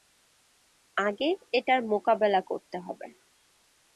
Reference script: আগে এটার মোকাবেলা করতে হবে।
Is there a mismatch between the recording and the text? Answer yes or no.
no